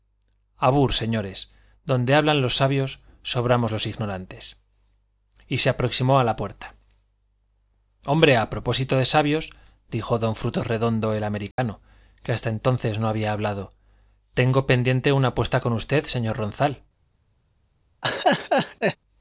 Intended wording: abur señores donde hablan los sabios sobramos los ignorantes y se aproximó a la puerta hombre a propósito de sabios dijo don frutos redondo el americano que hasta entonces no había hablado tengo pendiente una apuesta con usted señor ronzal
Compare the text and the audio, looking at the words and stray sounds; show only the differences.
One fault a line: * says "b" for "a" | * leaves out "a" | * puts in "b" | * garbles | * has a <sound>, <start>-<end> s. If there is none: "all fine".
* has a dropout, 11.5-11.6 s
* has a laugh, 18.0-19.0 s